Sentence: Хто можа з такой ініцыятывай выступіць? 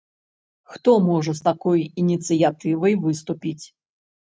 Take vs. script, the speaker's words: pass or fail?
pass